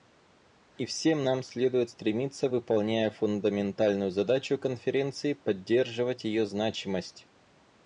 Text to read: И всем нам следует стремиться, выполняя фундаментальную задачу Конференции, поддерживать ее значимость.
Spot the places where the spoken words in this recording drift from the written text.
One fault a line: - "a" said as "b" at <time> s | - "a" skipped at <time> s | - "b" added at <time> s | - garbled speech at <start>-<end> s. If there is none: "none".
none